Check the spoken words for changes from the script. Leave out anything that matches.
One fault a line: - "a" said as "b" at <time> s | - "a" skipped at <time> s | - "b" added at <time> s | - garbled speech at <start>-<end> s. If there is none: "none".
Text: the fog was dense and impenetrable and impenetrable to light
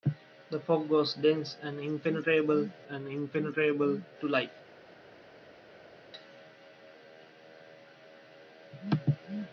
none